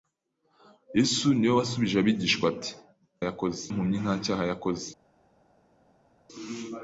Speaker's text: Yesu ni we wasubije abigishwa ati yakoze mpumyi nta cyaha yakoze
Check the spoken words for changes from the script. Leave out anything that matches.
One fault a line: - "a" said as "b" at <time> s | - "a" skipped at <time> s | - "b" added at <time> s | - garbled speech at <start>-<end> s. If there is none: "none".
none